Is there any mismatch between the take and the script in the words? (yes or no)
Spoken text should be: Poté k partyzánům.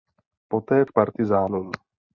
no